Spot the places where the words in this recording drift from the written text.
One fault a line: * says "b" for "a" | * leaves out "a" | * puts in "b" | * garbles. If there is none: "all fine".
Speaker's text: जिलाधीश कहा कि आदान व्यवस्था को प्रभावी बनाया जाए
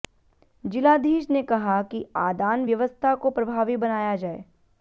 * puts in "ने"